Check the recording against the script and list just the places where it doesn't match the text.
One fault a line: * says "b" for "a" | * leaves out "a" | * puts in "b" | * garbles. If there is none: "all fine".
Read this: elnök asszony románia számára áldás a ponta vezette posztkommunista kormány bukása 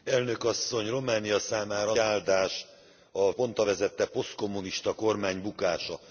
all fine